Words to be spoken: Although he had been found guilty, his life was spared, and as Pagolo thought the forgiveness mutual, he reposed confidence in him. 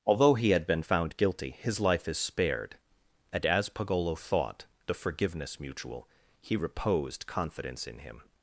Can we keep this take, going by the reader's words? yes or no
no